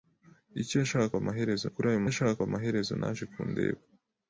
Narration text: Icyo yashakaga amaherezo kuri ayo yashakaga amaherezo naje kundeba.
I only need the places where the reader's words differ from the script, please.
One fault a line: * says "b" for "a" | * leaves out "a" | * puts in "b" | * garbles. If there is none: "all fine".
all fine